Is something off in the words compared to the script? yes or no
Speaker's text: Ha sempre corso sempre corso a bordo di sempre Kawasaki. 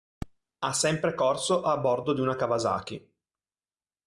yes